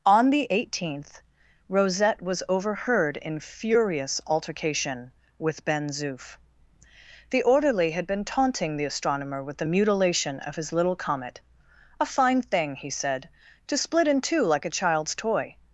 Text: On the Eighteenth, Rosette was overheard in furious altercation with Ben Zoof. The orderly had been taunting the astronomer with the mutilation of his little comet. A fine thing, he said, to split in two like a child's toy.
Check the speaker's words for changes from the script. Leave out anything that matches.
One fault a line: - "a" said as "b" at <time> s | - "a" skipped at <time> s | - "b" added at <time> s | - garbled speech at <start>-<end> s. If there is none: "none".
none